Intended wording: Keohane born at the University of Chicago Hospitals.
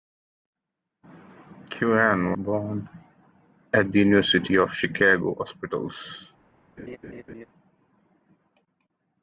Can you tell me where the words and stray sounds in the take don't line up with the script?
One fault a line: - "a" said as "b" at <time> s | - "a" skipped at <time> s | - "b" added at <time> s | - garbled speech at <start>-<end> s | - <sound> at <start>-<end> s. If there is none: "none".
- laugh at 6.8-7.5 s